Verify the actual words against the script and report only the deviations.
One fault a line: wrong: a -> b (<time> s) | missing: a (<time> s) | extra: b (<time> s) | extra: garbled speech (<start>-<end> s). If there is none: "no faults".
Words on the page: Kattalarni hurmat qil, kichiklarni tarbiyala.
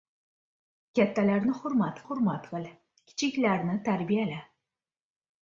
extra: hurmat (2.0 s)